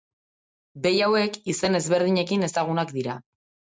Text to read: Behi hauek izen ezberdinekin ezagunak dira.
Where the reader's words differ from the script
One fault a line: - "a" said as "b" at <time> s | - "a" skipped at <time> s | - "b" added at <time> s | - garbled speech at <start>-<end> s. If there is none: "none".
none